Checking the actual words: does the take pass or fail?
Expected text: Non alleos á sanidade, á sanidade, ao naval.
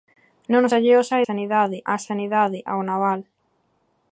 pass